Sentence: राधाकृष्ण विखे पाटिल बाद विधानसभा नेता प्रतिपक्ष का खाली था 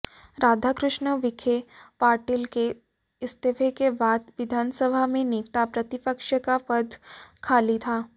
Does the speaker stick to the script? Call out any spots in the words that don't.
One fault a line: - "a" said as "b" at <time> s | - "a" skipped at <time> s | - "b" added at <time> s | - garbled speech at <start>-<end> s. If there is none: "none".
- "के इस्तीफे के" added at 2.5 s
- "में" added at 5.1 s
- "पद" added at 6.7 s